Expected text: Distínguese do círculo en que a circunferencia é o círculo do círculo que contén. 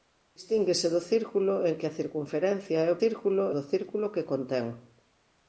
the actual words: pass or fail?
pass